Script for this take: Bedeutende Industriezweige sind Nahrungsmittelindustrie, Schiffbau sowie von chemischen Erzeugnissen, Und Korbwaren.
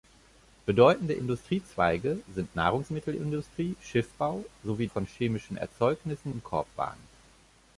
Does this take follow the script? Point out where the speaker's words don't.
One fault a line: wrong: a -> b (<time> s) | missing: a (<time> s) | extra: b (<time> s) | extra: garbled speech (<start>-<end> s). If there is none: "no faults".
no faults